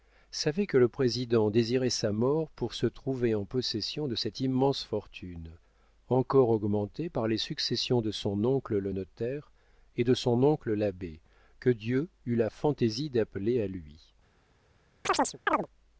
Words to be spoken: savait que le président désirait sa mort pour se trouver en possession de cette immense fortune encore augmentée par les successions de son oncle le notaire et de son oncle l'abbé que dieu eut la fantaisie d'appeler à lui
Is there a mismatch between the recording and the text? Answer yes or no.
no